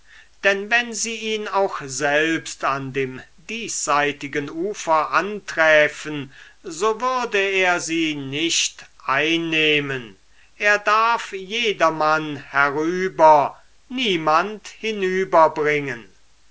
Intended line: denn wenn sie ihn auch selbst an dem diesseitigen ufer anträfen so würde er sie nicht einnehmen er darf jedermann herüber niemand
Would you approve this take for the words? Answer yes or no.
yes